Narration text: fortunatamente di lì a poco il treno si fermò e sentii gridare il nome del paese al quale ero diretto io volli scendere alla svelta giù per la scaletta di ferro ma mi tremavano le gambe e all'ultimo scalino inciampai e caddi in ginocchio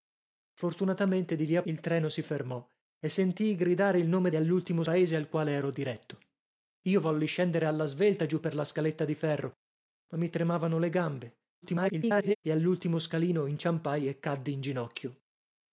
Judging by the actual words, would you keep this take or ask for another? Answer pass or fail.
fail